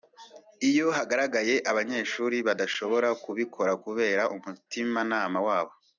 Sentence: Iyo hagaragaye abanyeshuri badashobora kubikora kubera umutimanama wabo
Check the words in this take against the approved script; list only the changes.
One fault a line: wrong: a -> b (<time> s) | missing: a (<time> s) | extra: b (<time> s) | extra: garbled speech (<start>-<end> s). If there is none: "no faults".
no faults